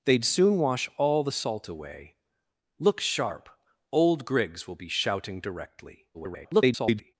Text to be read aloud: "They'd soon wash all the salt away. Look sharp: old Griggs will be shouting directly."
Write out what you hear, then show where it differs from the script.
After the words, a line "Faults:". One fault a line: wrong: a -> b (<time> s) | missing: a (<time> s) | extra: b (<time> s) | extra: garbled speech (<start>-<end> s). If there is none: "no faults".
"They'd soon wash all the salt away. Look sharp: old Griggs will be shouting directly." [garbled]
Faults:
extra: garbled speech (6.1-7.2 s)